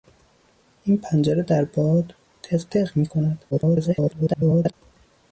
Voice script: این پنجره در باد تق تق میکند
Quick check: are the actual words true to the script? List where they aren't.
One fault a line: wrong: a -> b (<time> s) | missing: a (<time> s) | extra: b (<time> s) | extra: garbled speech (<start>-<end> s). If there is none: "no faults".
extra: garbled speech (3.5-4.7 s)